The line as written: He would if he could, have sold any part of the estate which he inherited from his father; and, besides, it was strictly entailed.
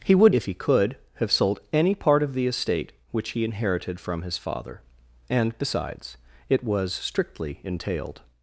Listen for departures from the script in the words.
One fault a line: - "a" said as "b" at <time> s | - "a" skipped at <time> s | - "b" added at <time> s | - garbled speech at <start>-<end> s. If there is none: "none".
none